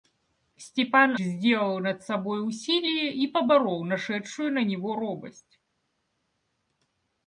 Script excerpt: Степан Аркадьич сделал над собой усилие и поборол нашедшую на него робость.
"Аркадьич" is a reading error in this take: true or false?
true